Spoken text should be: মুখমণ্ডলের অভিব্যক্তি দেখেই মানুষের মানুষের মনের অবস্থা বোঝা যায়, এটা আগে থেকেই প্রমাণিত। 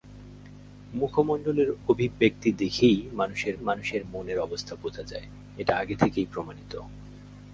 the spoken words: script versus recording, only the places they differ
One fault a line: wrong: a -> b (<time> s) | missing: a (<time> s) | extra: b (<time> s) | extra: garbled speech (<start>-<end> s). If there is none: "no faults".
no faults